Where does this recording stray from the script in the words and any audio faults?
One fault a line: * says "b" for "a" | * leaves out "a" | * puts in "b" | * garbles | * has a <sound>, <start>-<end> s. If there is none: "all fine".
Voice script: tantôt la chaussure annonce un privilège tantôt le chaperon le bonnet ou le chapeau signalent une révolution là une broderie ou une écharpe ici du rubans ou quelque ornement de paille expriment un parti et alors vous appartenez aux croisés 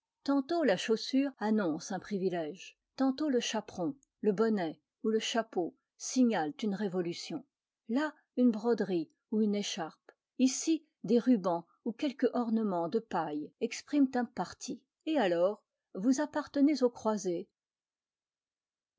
* says "des" for "du"